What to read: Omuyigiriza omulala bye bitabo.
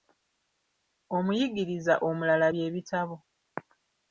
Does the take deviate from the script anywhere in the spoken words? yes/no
no